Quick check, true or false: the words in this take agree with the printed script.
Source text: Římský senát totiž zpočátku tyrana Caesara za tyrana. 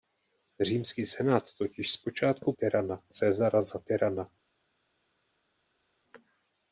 true